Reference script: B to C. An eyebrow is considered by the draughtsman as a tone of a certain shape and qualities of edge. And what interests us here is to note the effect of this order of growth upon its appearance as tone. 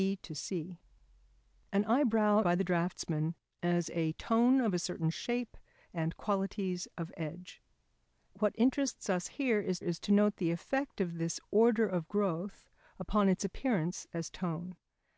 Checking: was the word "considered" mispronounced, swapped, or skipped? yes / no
yes